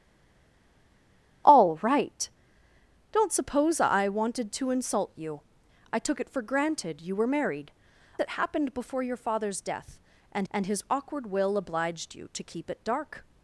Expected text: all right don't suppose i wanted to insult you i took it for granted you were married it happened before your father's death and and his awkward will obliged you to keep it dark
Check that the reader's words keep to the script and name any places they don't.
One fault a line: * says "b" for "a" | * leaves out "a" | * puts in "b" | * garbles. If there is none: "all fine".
all fine